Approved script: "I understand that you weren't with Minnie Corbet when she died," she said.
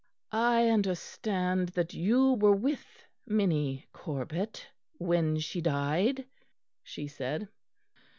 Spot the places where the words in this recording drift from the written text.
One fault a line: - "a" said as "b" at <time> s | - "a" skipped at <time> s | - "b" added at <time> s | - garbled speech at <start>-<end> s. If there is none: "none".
- "weren't" said as "were" at 2.3 s